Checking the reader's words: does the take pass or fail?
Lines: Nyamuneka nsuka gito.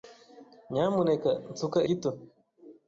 pass